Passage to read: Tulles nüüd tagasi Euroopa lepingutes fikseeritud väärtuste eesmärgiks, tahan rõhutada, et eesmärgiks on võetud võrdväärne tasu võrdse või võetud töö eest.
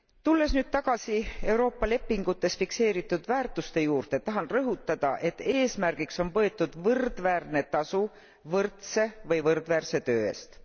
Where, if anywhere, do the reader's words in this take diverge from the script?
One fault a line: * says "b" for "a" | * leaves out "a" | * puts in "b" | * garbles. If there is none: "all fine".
* says "juurde" for "eesmärgiks"
* says "võrdväärse" for "võetud"